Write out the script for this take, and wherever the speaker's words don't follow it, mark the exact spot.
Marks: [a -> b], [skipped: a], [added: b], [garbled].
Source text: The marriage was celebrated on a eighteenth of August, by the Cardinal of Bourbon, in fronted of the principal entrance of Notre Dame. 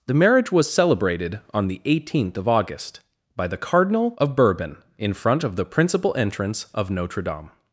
The marriage was celebrated on [a -> the] eighteenth of August, by the Cardinal of Bourbon, in [fronted -> front] of the principal entrance of Notre Dame.